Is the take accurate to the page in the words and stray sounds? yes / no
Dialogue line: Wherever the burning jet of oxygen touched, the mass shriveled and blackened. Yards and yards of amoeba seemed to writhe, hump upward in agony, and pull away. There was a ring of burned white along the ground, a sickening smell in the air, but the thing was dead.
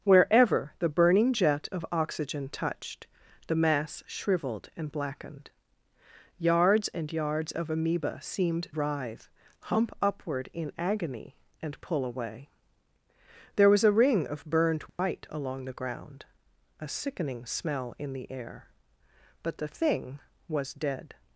no